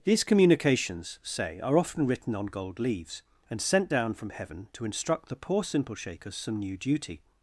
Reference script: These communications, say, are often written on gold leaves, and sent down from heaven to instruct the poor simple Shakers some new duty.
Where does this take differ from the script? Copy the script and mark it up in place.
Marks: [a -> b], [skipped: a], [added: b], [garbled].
These communications, say, are often written on gold leaves, and sent down from heaven to instruct the poor simple Shakers some new duty.